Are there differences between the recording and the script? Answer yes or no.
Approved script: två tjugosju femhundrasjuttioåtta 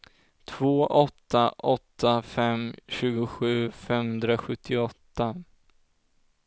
yes